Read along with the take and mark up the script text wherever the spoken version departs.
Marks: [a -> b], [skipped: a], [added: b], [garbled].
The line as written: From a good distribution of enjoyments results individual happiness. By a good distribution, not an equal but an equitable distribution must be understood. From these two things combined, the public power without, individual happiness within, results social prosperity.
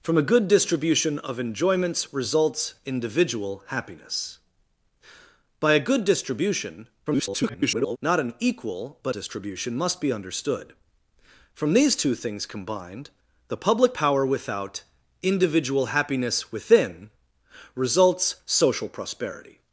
From a good distribution of enjoyments results individual happiness. By a good distribution, [garbled] not an equal but [skipped: an equitable] distribution must be understood. From these two things combined, the public power without, individual happiness within, results social prosperity.